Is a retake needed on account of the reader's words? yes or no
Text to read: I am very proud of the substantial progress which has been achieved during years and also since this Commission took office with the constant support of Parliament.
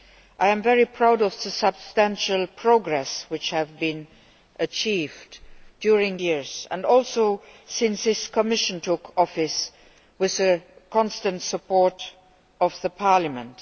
no